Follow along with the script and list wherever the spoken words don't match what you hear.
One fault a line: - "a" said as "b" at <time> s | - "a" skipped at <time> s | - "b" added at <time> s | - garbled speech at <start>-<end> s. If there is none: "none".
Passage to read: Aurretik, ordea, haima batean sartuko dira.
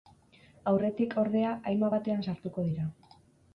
none